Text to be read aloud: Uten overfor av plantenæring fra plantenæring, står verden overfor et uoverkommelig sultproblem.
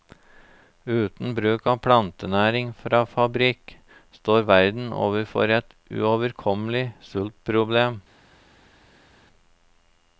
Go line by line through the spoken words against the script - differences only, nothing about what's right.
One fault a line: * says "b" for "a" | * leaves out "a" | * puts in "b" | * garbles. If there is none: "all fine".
* says "bruk" for "overfor"
* says "fabrikk" for "plantenæring"